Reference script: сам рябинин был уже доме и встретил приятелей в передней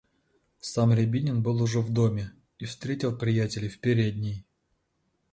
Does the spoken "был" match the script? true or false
true